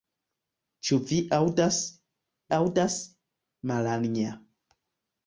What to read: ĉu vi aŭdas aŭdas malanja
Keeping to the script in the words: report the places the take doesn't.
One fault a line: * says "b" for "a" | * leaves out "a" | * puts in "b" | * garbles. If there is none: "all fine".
all fine